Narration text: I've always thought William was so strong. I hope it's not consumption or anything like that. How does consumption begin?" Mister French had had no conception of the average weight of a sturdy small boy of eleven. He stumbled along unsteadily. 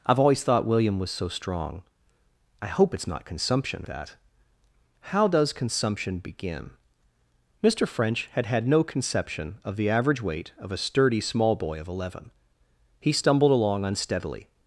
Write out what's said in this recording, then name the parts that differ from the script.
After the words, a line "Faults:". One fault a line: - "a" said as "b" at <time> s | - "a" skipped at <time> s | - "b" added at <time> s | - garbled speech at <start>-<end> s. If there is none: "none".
I've always thought William was so strong. I hope it's not consumption that. How does consumption begin?" Mister French had had no conception of the average weight of a sturdy small boy of eleven. He stumbled along unsteadily.
Faults:
- "or anything like" skipped at 3.9 s